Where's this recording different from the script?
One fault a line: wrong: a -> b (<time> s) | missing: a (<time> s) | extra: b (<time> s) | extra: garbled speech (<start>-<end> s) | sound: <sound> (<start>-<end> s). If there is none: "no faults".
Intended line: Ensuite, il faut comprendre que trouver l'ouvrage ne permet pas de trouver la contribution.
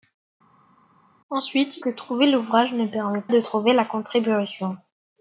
missing: il faut comprendre (1.8 s)
missing: pas (3.2 s)